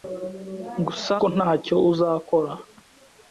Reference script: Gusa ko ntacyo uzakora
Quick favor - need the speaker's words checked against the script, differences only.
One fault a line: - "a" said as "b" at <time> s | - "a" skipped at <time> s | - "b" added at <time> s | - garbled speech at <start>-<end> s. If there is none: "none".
none